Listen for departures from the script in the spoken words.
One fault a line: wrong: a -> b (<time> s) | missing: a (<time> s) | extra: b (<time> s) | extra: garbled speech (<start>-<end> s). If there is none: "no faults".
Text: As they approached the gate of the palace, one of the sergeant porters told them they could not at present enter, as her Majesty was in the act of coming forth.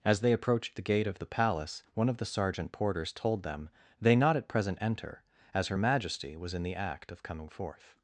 missing: could (4.2 s)